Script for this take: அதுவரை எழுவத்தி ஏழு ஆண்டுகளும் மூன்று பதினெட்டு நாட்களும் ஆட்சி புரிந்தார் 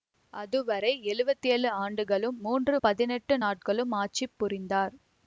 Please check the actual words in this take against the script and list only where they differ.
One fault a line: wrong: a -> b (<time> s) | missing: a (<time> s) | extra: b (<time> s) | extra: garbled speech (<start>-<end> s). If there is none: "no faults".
no faults